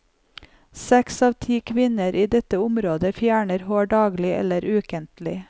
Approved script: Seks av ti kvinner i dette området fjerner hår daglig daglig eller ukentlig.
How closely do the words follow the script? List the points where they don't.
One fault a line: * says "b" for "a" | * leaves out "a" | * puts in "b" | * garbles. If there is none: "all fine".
* leaves out "daglig"